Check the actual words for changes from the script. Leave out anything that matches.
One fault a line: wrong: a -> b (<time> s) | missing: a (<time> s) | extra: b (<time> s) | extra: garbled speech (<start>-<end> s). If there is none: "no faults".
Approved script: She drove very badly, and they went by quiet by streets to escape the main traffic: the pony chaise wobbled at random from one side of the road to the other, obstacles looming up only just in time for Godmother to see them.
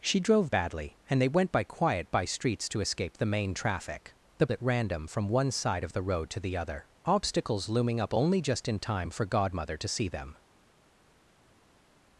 missing: very (0.5 s)
missing: pony chaise wobbled (4.5 s)